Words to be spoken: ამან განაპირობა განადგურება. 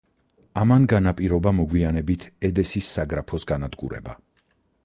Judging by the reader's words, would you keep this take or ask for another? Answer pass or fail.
fail